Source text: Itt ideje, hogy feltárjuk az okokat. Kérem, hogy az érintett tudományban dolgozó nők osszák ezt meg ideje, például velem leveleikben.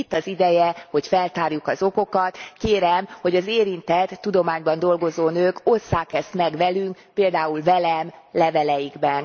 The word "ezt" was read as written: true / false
true